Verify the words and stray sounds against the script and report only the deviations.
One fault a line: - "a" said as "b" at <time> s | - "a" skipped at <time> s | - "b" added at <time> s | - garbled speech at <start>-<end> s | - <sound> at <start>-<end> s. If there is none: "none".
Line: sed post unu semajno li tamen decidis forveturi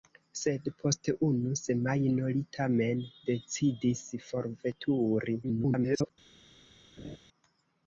- garbled speech at 5.4-6.1 s
- laugh at 7.0-7.2 s